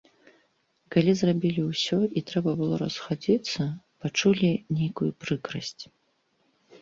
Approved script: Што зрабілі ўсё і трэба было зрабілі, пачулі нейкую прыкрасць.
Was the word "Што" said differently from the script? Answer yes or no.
yes